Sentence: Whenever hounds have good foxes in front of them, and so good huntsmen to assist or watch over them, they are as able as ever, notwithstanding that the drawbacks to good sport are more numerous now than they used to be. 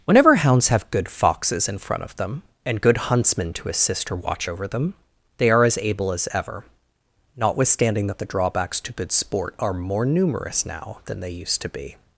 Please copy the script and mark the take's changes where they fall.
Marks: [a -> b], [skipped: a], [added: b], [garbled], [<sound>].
Whenever hounds have good foxes in front of them, and [skipped: so] good huntsmen to assist or watch over them, they are as able as ever, notwithstanding that the drawbacks to good sport are more numerous now than they used to be.